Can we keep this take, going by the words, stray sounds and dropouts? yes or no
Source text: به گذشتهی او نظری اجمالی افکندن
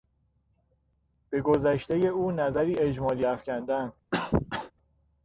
no